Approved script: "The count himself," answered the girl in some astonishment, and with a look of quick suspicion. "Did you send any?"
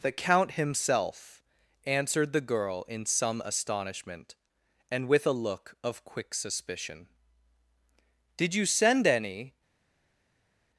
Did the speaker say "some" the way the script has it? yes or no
yes